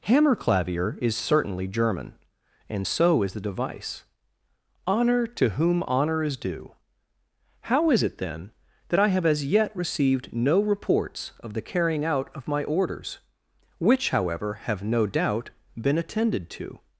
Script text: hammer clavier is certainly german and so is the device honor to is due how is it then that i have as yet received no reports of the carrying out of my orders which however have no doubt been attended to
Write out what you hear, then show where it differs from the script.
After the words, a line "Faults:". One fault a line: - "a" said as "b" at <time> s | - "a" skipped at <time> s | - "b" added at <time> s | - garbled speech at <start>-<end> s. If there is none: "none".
hammer clavier is certainly german and so is the device honor to whom honor is due how is it then that i have as yet received no reports of the carrying out of my orders which however have no doubt been attended to
Faults:
- "whom honor" added at 5.5 s